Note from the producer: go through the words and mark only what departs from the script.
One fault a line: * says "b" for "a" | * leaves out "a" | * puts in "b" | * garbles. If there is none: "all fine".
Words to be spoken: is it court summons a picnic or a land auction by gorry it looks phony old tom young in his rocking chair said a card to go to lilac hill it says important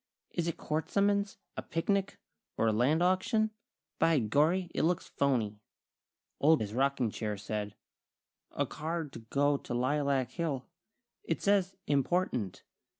* leaves out "tom young in"